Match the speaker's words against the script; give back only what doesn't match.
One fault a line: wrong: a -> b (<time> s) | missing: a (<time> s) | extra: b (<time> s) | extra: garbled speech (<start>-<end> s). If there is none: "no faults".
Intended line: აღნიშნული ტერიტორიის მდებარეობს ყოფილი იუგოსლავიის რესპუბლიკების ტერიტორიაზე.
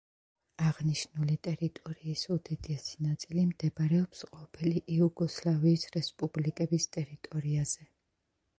extra: უდიდესი ნაწილი (2.4 s)